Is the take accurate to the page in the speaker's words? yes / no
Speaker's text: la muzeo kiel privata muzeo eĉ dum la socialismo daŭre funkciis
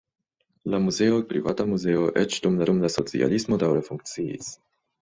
no